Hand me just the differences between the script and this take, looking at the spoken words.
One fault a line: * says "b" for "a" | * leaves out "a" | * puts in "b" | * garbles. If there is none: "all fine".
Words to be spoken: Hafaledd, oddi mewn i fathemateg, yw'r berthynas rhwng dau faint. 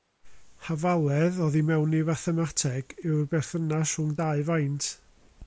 all fine